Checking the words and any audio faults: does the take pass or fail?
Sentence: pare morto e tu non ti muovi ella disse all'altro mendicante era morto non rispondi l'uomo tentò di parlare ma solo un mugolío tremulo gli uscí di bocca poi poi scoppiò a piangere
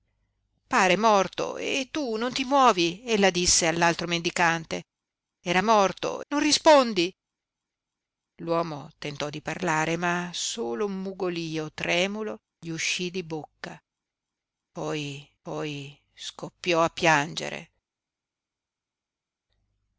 pass